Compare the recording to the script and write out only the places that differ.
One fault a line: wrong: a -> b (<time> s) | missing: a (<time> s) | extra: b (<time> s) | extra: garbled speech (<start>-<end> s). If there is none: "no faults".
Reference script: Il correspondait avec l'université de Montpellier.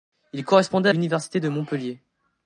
missing: avec (0.9 s)